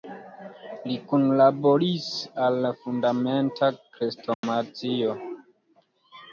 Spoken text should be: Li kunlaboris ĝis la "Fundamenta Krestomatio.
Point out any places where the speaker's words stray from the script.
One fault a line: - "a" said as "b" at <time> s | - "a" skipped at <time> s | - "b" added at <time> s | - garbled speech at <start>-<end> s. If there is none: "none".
- "ĝis" said as "al" at 2.5 s